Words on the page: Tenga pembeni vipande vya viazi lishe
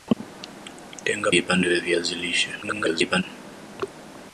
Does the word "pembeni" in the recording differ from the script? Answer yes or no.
yes